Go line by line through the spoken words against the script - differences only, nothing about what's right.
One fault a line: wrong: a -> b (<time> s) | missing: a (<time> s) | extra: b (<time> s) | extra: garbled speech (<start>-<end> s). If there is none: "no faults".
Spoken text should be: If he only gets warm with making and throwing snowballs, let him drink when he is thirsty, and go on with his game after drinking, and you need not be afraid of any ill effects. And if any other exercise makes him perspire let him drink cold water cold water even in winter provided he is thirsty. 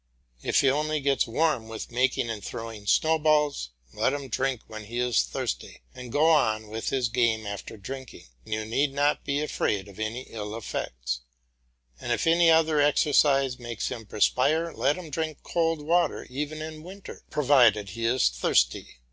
missing: cold water (16.2 s)